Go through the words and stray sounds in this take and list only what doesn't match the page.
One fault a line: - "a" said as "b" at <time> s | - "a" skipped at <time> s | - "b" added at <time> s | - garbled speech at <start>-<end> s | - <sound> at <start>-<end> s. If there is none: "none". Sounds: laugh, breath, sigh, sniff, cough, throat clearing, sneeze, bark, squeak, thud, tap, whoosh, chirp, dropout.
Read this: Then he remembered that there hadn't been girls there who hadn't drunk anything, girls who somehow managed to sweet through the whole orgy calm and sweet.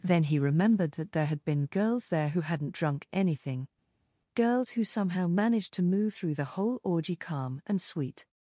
- "hadn't" said as "had" at 1.3 s
- "sweet" said as "move" at 5.8 s